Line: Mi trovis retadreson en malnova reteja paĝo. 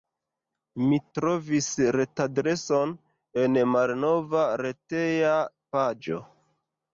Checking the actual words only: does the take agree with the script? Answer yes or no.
yes